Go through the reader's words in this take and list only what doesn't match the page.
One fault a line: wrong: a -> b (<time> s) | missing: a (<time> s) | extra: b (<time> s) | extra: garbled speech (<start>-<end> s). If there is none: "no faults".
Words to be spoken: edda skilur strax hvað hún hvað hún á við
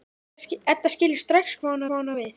no faults